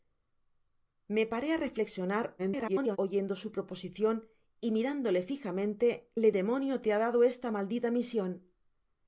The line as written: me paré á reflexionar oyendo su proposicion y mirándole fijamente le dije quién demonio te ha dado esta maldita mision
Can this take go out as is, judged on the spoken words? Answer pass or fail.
fail